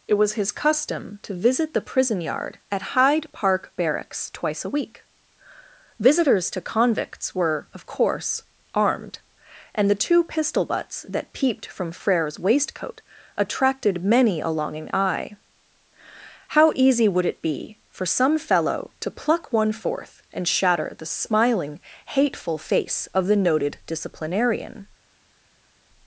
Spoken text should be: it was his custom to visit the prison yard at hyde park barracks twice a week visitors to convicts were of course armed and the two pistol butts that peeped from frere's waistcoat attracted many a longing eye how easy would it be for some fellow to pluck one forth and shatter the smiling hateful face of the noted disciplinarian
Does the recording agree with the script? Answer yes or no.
yes